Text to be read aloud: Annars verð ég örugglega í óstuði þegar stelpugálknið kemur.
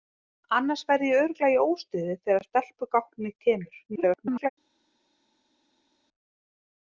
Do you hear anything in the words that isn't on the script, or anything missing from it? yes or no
yes